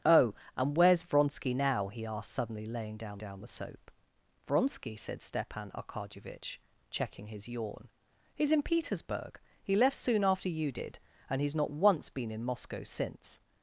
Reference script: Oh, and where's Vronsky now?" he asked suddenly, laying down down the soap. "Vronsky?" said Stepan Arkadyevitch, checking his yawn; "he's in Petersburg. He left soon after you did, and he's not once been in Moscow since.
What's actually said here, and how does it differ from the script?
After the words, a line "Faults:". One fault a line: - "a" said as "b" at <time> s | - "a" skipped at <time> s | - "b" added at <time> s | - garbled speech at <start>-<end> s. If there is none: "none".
Oh, and where's Vronsky now?" he asked suddenly, laying down down the soap. "Vronsky?" said Stepan Arkadyevitch, checking his yawn; "he's in Petersburg. He left soon after you did, and he's not once been in Moscow since.
Faults:
none